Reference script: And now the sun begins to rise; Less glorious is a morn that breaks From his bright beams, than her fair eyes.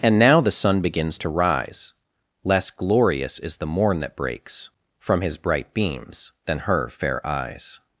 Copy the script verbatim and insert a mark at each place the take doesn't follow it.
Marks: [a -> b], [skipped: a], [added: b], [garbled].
And now the sun begins to rise; Less glorious is [a -> the] morn that breaks From his bright beams, than her fair eyes.